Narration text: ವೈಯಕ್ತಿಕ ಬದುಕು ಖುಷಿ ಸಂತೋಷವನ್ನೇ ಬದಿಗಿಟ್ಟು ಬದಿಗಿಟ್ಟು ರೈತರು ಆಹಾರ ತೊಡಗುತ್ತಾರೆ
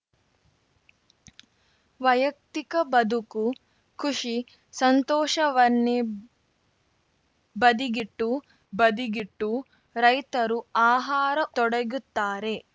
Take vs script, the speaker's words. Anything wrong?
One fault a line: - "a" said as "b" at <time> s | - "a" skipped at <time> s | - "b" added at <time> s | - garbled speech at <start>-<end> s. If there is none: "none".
none